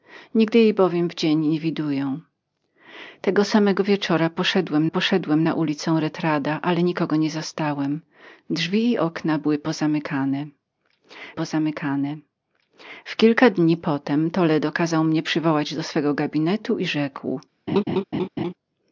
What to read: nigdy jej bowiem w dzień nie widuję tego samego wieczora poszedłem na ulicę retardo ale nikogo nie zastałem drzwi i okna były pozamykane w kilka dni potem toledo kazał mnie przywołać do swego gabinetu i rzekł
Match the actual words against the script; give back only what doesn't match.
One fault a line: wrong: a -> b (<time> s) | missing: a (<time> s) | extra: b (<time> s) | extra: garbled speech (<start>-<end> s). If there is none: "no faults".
extra: poszedłem (4.9 s)
extra: pozamykane (11.3 s)